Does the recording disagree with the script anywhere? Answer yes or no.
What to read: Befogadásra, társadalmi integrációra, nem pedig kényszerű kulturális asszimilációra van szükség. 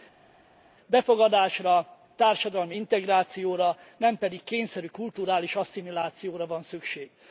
no